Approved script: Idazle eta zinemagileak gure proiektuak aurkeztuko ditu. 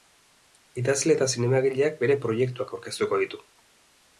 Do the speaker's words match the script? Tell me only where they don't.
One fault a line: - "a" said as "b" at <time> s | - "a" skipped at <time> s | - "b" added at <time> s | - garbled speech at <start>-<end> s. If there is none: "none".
- "gure" said as "bere" at 2.0 s